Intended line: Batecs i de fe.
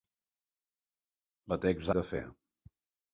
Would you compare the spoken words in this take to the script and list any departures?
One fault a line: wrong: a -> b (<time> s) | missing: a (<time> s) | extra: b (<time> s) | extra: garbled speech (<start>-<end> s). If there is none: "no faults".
no faults